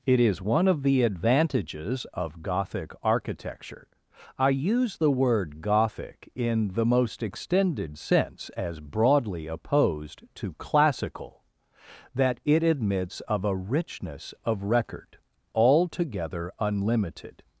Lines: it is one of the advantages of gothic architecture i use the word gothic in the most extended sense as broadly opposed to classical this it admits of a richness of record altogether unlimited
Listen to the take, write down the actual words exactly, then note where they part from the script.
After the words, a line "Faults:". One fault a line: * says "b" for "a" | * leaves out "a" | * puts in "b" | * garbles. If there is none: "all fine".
it is one of the advantages of gothic architecture i use the word gothic in the most extended sense as broadly opposed to classical that it admits of a richness of record altogether unlimited
Faults:
* says "that" for "this"